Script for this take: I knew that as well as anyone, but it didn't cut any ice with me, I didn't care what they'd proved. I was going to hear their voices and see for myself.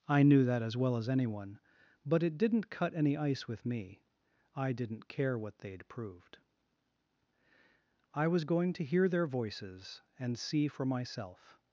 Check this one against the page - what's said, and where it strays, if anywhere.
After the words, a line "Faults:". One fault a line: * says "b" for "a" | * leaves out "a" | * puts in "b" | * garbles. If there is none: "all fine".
I knew that as well as anyone, but it didn't cut any ice with me, I didn't care what they'd proved. I was going to hear their voices and see for myself.
Faults:
all fine